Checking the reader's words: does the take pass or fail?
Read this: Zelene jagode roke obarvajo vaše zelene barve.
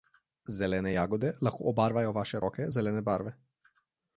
fail